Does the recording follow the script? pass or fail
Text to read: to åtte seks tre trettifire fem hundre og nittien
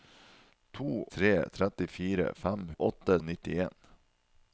fail